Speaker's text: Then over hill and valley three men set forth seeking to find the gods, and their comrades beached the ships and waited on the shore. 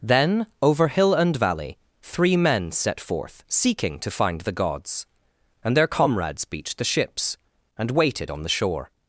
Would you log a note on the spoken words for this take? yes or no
no